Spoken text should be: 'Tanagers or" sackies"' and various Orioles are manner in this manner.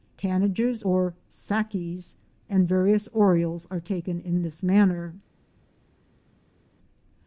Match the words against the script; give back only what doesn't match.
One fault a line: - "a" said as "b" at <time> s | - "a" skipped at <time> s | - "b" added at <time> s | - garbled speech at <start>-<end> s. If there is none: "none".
- "manner" said as "taken" at 3.8 s